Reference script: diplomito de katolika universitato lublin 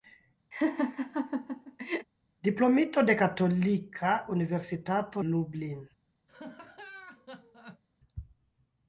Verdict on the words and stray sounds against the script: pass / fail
fail